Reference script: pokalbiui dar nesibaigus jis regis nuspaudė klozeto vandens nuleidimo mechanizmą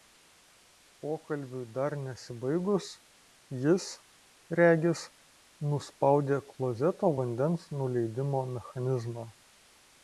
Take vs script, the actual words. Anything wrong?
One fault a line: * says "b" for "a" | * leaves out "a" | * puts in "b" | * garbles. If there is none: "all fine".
all fine